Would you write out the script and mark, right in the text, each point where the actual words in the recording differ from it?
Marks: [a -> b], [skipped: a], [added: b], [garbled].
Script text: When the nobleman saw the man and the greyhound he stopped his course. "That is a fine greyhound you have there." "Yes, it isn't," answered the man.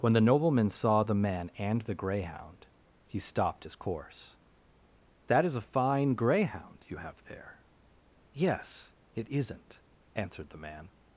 When the nobleman saw the man and the greyhound he stopped his course. "That is a fine greyhound you have there." "Yes, it isn't," answered the man.